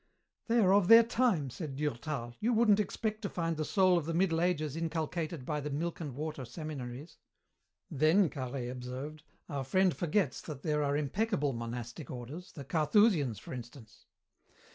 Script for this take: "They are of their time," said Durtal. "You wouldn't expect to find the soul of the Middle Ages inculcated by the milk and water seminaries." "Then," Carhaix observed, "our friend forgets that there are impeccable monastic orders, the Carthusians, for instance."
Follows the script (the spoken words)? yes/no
yes